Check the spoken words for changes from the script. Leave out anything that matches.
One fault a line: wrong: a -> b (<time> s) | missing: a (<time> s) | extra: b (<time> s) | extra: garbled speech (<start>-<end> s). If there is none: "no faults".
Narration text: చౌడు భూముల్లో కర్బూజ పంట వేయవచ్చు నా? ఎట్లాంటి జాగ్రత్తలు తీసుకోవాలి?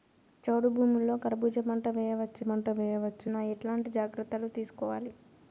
extra: పంట వేయవచ్చు (2.4 s)